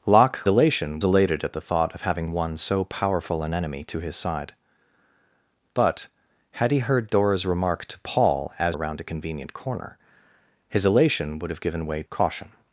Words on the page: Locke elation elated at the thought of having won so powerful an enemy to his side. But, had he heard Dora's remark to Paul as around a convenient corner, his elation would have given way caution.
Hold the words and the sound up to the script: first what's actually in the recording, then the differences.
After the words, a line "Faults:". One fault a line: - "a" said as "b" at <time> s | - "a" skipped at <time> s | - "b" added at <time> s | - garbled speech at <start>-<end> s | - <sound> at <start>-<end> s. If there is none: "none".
Locke elation elated at the thought of having won so powerful an enemy to his side. But, had he heard Dora's remark to Paul as around a convenient corner, his elation would have given way caution.
Faults:
none